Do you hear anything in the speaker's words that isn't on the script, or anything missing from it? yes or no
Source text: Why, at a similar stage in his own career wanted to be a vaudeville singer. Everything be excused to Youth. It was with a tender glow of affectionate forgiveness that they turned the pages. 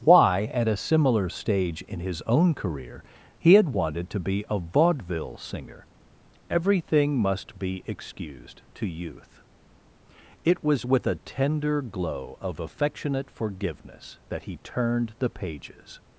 yes